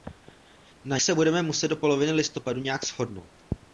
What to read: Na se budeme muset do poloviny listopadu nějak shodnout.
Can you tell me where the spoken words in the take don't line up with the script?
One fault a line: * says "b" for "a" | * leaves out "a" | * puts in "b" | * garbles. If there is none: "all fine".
all fine